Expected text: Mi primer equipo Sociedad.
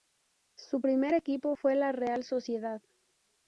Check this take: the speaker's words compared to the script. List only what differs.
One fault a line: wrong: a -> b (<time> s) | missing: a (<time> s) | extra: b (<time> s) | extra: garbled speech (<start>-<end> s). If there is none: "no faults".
wrong: Mi -> Su (0.6 s)
extra: fue la Real (1.6 s)